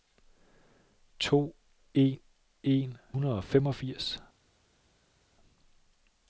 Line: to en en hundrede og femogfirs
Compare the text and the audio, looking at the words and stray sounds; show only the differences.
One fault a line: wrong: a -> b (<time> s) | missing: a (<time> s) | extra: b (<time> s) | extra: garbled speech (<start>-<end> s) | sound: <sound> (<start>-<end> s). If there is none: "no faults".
no faults